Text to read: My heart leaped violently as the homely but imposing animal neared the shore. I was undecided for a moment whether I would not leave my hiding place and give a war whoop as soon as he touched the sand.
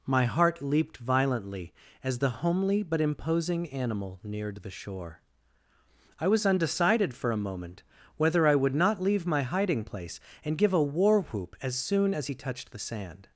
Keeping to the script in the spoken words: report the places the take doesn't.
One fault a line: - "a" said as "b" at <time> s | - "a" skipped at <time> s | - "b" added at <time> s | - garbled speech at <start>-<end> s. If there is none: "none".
none